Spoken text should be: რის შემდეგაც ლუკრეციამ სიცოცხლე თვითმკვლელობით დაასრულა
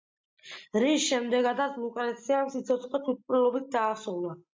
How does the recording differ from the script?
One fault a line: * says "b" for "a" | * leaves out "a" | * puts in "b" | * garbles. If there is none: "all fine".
all fine